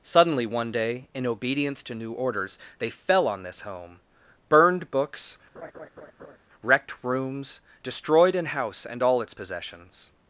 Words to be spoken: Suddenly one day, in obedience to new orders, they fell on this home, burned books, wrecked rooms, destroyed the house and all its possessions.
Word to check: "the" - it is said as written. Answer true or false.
false